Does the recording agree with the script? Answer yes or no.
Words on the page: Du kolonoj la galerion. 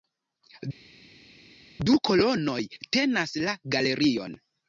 no